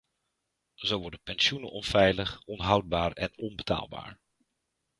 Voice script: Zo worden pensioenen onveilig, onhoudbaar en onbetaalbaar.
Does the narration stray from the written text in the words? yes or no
no